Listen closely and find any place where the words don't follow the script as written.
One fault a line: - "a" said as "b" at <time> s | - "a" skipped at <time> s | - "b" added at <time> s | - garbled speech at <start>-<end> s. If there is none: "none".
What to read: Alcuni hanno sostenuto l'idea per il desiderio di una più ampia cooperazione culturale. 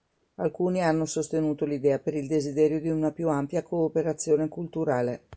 none